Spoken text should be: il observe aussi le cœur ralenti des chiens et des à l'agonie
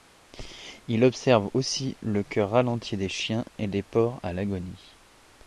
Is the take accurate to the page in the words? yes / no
no